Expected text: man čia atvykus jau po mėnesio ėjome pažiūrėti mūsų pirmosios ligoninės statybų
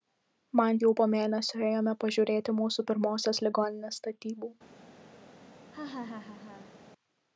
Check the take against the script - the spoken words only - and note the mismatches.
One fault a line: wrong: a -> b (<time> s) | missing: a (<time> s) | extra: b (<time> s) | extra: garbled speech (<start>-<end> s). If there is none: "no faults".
missing: čia atvykus (0.8 s)